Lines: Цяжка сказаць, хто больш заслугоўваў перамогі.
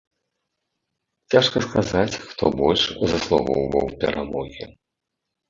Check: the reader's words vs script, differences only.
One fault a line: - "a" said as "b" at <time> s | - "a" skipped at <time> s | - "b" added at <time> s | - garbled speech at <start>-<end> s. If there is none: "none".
none